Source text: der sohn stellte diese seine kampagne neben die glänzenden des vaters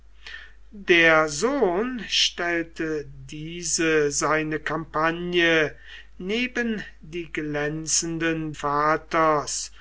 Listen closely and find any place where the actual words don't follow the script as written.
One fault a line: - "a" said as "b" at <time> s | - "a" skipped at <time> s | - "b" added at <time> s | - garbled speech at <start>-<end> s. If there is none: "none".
- "des" skipped at 8.6 s